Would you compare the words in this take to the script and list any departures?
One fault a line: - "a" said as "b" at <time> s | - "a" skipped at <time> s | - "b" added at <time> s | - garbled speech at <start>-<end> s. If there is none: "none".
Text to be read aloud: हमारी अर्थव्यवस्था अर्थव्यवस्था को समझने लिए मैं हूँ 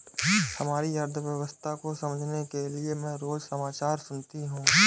- "अर्थव्यवस्था" skipped at 1.7 s
- "के" added at 2.5 s
- "रोज समाचार सुनती" added at 3.2 s